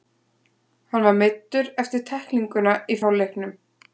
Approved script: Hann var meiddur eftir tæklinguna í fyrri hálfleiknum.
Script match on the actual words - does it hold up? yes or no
no